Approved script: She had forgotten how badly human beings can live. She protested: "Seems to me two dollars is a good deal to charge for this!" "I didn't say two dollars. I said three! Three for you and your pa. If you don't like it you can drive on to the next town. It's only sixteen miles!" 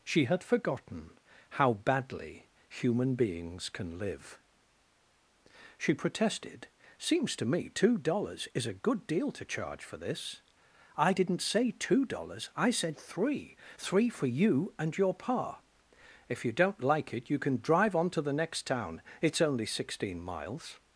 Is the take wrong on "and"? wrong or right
right